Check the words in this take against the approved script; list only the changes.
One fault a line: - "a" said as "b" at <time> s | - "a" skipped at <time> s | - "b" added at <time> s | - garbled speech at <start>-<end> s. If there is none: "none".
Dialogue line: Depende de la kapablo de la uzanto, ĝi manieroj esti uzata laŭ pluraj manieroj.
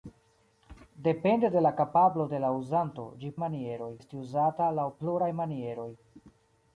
none